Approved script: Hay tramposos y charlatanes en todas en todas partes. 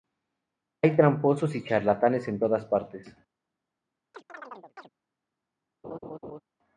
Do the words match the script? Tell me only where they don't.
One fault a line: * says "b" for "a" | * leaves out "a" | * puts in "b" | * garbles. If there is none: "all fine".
* leaves out "en todas"